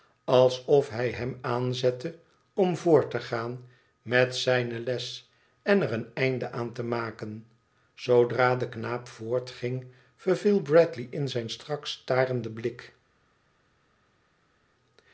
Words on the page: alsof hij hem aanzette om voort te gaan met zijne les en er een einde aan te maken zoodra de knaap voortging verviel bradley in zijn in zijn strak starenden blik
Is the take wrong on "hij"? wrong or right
right